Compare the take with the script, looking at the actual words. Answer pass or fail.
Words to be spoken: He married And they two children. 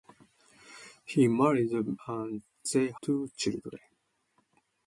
pass